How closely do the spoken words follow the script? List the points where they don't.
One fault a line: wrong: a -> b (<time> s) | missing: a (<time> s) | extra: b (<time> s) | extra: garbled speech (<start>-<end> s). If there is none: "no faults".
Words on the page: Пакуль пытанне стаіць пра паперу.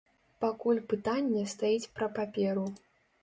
no faults